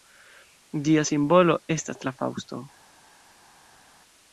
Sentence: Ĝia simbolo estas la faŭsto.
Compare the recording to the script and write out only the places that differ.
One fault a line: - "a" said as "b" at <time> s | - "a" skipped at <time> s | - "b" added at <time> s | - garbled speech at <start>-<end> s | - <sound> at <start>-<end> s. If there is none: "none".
none